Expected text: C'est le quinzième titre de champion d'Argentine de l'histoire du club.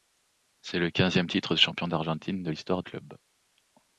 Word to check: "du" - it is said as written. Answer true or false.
false